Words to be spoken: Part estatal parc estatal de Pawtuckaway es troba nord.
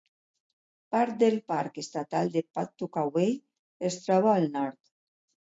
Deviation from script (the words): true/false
true